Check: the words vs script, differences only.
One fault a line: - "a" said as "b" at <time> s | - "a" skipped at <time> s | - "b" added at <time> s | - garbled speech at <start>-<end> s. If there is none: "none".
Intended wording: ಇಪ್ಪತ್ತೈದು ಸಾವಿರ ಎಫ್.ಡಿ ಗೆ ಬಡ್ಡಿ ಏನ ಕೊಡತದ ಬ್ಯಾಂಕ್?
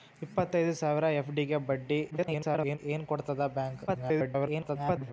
- garbled speech at 2.1-2.8 s
- garbled speech at 3.9-5.1 s